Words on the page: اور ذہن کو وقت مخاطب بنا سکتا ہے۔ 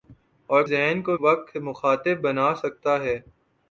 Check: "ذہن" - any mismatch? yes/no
no